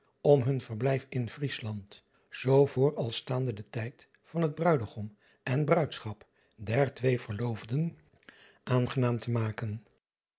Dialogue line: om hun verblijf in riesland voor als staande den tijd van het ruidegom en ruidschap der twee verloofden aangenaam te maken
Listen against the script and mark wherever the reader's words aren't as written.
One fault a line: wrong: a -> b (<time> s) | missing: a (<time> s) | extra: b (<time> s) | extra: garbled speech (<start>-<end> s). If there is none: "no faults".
extra: zoo (2.3 s)